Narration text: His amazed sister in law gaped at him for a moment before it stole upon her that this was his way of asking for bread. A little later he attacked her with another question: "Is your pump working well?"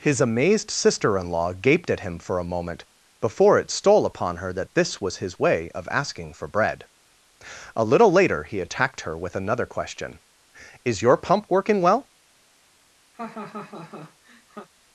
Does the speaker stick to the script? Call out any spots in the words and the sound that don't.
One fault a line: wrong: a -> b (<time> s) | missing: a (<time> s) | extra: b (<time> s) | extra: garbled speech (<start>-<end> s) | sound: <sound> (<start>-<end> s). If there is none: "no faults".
sound: laugh (13.1-14.7 s)